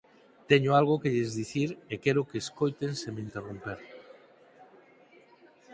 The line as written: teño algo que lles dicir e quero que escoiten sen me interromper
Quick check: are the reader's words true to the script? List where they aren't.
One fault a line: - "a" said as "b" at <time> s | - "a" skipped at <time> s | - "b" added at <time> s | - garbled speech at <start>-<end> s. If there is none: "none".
none